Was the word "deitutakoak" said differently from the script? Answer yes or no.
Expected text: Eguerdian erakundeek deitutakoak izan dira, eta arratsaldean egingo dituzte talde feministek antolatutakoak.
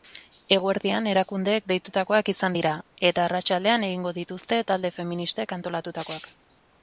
no